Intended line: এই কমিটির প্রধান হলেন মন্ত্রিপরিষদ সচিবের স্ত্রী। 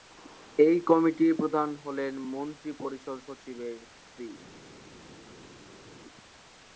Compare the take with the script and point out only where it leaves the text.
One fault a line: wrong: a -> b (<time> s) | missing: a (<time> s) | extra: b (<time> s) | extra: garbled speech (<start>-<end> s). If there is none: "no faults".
no faults